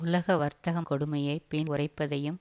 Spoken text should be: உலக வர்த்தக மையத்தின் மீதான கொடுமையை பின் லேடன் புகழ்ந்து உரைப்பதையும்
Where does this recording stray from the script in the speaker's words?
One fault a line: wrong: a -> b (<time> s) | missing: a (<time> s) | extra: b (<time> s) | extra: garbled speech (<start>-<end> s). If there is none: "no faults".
missing: மையத்தின் மீதான (0.8 s)
missing: லேடன் புகழ்ந்து (1.7 s)